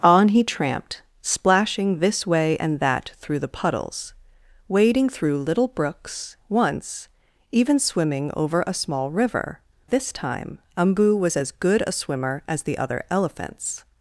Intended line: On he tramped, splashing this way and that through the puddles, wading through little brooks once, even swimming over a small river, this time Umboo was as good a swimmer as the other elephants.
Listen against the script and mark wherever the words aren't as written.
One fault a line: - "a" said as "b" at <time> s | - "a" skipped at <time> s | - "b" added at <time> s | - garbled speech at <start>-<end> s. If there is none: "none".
none